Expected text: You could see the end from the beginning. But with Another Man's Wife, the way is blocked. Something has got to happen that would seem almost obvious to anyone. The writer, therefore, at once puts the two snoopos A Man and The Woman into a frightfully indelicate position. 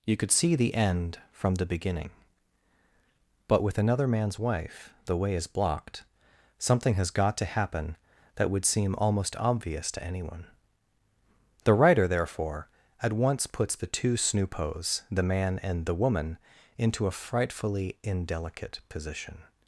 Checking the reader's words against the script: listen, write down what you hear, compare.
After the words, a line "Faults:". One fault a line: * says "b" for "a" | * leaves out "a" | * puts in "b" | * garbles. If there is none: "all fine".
You could see the end from the beginning. But with Another Man's Wife, the way is blocked. Something has got to happen that would seem almost obvious to anyone. The writer, therefore, at once puts the two snoopos The Man and The Woman into a frightfully indelicate position.
Faults:
* says "The" for "A"